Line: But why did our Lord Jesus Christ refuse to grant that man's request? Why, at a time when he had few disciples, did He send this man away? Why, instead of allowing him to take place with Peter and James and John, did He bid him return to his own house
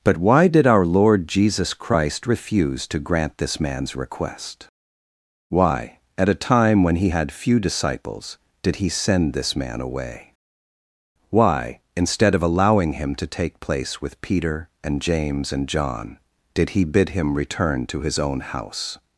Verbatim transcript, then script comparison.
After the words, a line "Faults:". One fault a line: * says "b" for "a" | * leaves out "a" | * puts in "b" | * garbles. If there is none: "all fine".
But why did our Lord Jesus Christ refuse to grant this man's request? Why, at a time when he had few disciples, did He send this man away? Why, instead of allowing him to take place with Peter and James and John, did He bid him return to his own house
Faults:
* says "this" for "that"